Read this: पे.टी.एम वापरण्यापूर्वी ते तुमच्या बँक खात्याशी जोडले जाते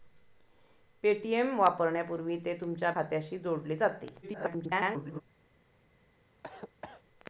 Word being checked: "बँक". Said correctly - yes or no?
no